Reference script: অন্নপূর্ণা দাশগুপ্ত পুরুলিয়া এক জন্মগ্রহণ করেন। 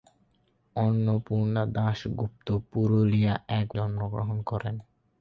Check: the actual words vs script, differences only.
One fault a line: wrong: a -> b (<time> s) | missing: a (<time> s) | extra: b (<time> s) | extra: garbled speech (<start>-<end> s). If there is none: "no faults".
no faults